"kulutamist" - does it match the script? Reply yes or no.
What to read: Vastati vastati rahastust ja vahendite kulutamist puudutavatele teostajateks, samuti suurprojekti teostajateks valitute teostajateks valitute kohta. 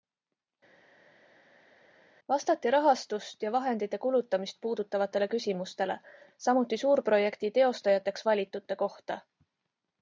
yes